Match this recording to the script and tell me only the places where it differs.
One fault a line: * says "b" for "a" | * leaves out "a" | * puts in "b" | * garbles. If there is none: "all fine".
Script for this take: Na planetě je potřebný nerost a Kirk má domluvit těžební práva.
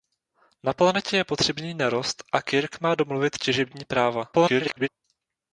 * garbles